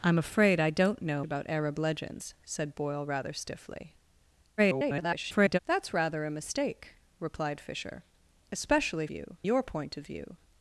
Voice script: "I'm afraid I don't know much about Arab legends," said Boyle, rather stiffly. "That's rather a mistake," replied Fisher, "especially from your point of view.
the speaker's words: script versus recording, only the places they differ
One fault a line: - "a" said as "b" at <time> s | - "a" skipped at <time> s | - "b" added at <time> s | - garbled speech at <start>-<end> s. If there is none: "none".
- "much" skipped at 1.2 s
- garbled speech at 4.6-5.6 s
- "from" said as "view" at 9.1 s